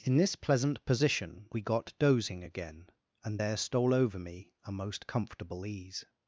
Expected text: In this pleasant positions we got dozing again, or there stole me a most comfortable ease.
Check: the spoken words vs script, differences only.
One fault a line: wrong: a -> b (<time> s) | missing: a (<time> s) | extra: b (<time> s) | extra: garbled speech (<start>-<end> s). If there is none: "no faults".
wrong: positions -> position (0.8 s)
wrong: or -> and (3.2 s)
extra: over (3.9 s)